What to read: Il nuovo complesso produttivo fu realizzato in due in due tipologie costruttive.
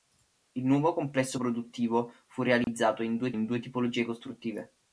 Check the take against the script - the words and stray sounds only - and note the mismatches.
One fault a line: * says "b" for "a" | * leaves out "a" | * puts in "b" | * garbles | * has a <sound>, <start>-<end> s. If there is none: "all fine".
* has a dropout, 2.6-2.7 s